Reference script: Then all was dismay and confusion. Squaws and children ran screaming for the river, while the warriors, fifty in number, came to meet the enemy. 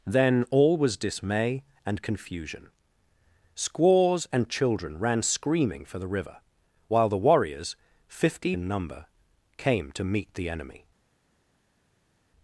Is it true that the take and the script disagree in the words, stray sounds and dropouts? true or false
false